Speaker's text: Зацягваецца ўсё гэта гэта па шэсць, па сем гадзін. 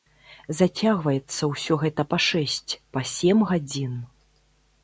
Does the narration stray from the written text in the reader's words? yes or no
yes